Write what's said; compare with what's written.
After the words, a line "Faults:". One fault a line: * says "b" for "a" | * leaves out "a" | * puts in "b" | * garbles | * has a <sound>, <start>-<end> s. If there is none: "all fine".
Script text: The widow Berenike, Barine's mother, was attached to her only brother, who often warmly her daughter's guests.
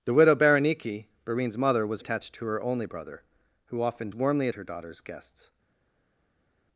The widow Berenike, Barine's mother, was attached to her only brother, who often warmly her daughter's guests.
Faults:
all fine